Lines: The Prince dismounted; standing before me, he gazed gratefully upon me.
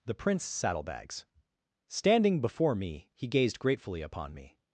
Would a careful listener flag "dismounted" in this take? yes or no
yes